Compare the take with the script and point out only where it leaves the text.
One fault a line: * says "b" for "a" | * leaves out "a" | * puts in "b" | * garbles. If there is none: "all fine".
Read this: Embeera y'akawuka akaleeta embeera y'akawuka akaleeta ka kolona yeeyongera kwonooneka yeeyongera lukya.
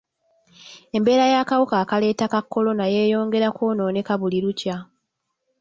* leaves out "embeera y'akawuka akaleeta"
* says "buli" for "yeeyongera"